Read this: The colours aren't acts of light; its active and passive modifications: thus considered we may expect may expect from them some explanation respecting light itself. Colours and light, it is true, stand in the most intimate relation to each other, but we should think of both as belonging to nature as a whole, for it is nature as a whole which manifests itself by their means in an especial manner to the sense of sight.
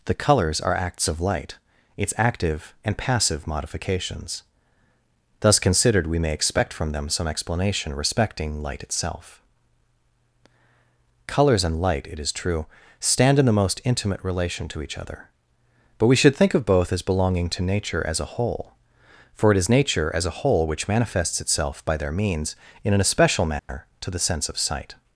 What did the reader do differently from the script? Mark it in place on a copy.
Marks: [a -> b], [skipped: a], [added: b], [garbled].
The colours [aren't -> are] acts of light; its active and passive modifications: thus considered we may expect [skipped: may expect] from them some explanation respecting light itself. Colours and light, it is true, stand in the most intimate relation to each other, but we should think of both as belonging to nature as a whole, for it is nature as a whole which manifests itself by their means in an especial manner to the sense of sight.